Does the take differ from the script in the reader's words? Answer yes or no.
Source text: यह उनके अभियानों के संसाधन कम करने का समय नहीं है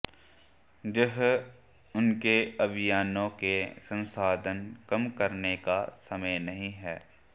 no